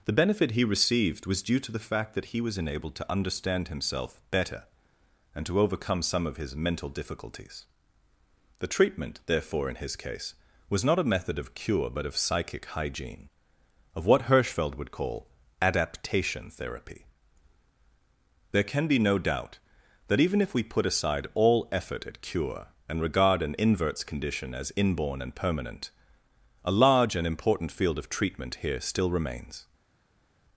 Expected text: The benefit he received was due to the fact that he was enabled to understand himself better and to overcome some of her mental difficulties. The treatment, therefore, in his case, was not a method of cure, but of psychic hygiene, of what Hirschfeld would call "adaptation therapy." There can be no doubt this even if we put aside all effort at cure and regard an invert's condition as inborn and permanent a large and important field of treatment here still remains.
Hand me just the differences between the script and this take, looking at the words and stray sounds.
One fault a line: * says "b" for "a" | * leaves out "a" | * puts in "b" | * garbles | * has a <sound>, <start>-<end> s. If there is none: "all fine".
* says "his" for "her"
* says "that" for "this"